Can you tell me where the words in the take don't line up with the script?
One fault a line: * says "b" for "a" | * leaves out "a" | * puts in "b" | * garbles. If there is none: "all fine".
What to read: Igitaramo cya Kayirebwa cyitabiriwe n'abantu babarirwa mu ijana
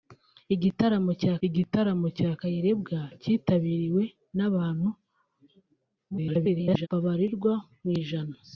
* puts in "igitaramo cya"
* garbles